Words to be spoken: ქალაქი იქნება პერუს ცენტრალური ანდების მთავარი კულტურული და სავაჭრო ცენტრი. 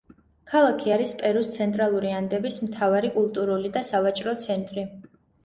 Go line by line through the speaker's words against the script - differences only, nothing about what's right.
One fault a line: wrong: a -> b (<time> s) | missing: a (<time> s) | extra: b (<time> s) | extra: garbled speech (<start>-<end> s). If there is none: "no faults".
wrong: იქნება -> არის (0.9 s)